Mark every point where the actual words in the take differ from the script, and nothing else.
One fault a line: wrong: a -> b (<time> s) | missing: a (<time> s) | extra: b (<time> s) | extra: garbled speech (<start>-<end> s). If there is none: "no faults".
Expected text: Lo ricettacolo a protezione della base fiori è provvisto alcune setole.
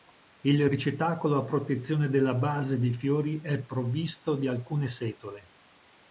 wrong: Lo -> Il (0.4 s)
extra: dei (2.8 s)
extra: di (4.4 s)